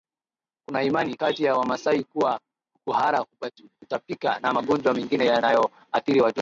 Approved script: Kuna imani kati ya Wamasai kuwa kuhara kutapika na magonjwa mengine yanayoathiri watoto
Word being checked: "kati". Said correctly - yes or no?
yes